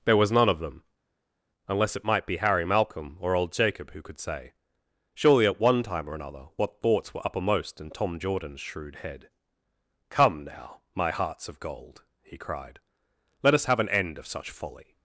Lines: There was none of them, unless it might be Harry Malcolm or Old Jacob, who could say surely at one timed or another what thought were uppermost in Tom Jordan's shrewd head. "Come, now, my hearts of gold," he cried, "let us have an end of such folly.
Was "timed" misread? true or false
true